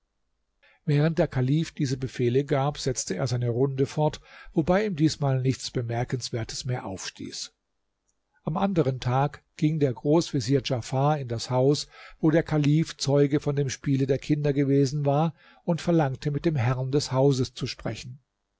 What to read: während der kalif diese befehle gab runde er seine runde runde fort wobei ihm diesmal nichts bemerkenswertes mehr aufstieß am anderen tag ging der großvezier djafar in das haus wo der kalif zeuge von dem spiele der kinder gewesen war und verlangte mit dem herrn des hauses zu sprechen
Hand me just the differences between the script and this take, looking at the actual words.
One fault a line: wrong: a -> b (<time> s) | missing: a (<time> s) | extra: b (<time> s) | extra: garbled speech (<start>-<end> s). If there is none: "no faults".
wrong: runde -> setzte (2.8 s)
missing: runde (3.9 s)